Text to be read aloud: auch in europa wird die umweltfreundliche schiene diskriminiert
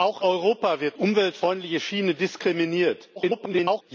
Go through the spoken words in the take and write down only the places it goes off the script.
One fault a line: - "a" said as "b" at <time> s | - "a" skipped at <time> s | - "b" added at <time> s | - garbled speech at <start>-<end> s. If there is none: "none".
- "in" skipped at 0.2 s
- "die" skipped at 1.0 s
- garbled speech at 3.2-3.8 s